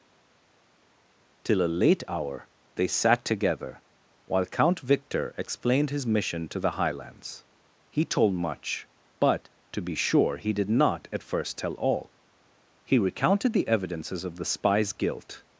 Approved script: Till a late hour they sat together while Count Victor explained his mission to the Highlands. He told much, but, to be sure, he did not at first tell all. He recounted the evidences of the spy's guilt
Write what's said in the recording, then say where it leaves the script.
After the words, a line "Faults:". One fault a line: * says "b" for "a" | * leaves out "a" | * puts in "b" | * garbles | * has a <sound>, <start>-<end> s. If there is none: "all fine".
Till a late hour they sat together while Count Victor explained his mission to the Highlands. He told much, but, to be sure, he did not at first tell all. He recounted the evidences of the spy's guilt
Faults:
all fine